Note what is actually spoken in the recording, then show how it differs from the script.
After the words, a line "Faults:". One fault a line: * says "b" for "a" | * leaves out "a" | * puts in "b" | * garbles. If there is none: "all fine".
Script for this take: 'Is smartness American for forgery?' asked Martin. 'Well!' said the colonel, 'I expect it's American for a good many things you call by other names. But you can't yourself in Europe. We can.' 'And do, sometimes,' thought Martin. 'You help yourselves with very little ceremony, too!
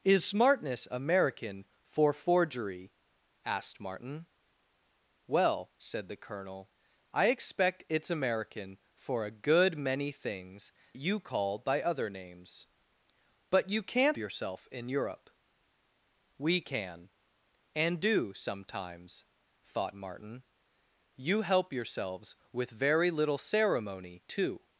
'Is smartness American for forgery?' asked Martin. 'Well!' said the colonel, 'I expect it's American for a good many things you call by other names. But you can't yourself in Europe. We can.' 'And do, sometimes,' thought Martin. 'You help yourselves with very little ceremony, too!
Faults:
all fine